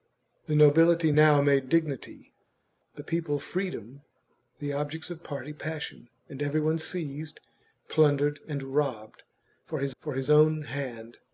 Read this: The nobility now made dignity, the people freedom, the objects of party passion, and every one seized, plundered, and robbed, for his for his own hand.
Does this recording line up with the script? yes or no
yes